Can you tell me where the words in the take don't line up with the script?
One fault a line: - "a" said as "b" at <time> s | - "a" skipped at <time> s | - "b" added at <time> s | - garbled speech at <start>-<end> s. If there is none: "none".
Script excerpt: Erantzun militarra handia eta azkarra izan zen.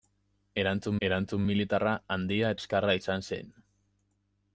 - "erantzun" added at 1.1 s
- "eta" skipped at 2.5 s